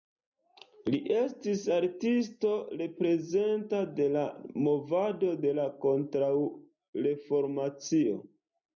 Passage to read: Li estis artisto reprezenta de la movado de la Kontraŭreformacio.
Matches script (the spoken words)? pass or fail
pass